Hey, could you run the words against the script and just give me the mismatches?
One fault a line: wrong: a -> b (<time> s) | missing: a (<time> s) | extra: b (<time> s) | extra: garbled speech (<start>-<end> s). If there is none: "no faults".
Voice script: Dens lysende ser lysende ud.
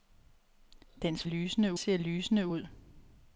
no faults